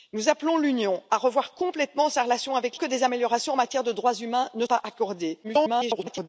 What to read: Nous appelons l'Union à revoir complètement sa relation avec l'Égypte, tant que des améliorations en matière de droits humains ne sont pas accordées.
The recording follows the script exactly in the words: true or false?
false